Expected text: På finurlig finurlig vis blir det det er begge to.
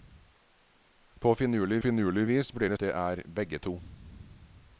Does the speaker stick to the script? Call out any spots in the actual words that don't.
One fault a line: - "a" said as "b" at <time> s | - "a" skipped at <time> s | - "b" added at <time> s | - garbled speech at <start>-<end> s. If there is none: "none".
none